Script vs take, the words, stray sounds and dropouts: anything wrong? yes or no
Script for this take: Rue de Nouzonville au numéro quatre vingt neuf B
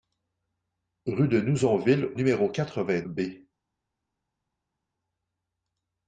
yes